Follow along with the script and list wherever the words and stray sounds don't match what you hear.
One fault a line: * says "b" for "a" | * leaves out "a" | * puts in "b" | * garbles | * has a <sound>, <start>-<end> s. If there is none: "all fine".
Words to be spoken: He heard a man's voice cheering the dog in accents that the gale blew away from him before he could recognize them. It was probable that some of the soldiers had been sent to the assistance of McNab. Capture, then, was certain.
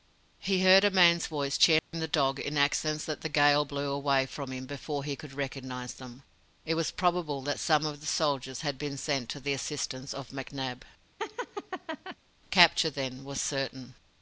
* has a dropout, 1.8-1.9 s
* has a laugh, 11.2-12.2 s